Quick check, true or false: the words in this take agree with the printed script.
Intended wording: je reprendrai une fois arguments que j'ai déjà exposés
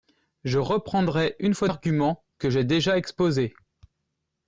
true